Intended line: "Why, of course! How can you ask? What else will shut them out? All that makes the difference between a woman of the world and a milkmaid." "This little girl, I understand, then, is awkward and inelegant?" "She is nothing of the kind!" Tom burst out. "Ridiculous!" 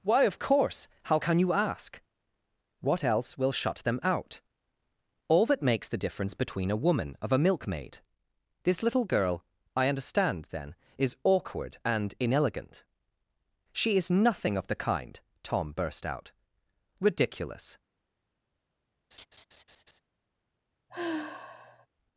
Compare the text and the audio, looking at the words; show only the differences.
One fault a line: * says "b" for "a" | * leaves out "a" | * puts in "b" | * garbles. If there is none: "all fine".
* leaves out "the world and"